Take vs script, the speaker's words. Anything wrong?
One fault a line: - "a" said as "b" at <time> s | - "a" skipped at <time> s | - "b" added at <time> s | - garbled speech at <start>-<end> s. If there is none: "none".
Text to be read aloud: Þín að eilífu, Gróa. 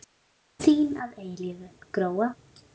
none